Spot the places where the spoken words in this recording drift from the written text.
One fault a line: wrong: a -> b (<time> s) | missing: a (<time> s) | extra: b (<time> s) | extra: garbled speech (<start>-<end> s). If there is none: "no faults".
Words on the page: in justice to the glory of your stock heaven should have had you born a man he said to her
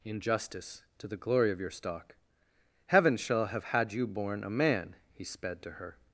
wrong: should -> shall (3.1 s)
wrong: said -> sped (5.2 s)